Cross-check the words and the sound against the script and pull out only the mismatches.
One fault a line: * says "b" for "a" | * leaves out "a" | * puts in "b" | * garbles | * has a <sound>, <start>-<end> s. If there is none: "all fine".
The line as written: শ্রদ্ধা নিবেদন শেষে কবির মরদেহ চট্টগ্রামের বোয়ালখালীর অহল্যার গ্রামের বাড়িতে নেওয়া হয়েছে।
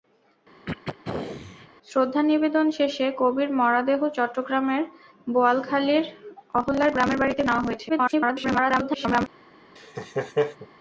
* has a throat clearing, 0.7-1.7 s
* garbles
* has a laugh, 9.8-10.7 s